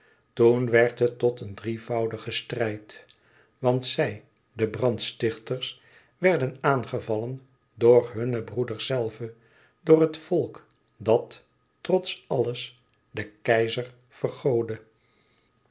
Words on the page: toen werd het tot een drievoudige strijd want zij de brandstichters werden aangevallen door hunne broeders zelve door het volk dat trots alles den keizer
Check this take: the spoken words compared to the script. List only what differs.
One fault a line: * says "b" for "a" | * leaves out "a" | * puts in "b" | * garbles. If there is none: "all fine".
all fine